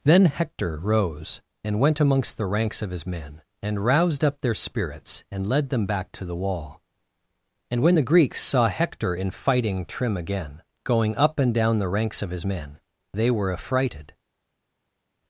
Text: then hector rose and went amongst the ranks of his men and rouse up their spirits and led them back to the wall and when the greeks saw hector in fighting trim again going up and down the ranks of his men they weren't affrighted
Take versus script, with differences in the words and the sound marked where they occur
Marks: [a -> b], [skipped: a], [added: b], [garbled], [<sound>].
then hector rose and went amongst the ranks of his men and [rouse -> roused] up their spirits and led them back to the wall and when the greeks saw hector in fighting trim again going up and down the ranks of his men they [weren't -> were] affrighted